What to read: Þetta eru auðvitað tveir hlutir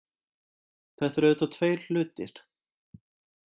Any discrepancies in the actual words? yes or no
no